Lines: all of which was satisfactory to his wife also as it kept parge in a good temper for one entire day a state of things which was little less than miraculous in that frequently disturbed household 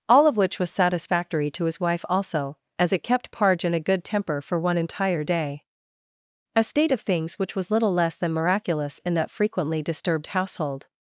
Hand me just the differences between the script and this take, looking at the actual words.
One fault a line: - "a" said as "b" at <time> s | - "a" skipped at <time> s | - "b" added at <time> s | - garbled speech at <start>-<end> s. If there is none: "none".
none